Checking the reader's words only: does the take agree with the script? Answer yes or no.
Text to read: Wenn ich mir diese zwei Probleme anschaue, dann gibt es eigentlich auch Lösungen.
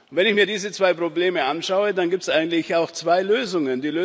no